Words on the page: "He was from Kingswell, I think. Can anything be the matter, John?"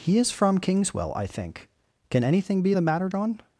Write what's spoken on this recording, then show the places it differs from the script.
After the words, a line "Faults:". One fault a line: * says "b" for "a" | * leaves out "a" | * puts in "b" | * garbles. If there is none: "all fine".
"He is from Kingswell, I think. Can anything be the matter, John?"
Faults:
* says "is" for "was"